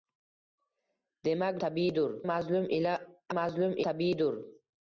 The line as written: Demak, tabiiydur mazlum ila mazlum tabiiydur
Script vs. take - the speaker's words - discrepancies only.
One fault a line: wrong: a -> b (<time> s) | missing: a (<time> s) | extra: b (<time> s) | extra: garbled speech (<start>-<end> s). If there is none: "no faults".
no faults